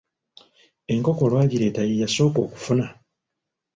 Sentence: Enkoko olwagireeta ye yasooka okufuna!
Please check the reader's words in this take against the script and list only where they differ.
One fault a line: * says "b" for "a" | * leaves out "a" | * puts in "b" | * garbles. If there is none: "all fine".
all fine